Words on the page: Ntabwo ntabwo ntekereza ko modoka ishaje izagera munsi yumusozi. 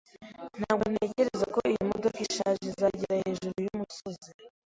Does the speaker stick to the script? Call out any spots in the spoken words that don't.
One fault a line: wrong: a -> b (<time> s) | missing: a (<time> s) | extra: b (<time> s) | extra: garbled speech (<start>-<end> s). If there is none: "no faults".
missing: ntabwo (0.8 s)
extra: iyi (1.7 s)
wrong: munsi -> hejuru (3.2 s)